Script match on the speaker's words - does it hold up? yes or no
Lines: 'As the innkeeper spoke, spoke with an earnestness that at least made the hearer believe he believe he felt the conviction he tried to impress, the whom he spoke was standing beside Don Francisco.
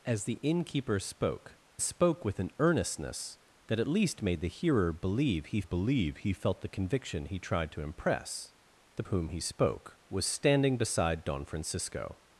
yes